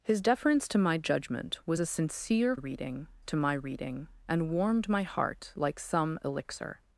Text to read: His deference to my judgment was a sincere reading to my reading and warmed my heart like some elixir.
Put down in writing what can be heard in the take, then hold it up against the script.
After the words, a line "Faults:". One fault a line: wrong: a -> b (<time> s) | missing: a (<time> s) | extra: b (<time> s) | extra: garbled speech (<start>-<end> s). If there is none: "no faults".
His deference to my judgment was a sincere reading to my reading and warmed my heart like some elixir.
Faults:
no faults